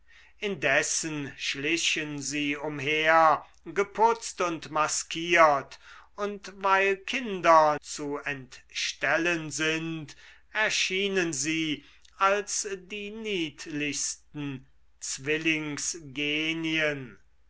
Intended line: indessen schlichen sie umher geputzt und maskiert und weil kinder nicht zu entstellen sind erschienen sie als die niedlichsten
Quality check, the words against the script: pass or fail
fail